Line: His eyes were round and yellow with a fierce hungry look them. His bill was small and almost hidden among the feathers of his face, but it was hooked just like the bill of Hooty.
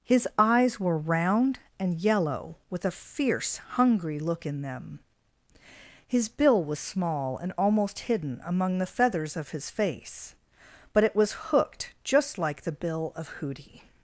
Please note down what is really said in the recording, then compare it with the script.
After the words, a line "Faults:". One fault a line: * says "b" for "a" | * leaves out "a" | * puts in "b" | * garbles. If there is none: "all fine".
His eyes were round and yellow with a fierce hungry look in them. His bill was small and almost hidden among the feathers of his face, but it was hooked just like the bill of Hooty.
Faults:
* puts in "in"